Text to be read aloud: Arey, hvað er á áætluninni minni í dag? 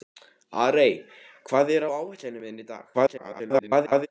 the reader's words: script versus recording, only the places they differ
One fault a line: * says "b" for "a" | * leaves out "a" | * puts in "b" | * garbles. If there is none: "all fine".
* garbles